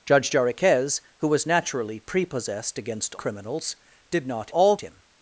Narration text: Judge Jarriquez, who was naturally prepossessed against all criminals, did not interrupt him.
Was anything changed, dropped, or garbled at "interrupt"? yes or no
yes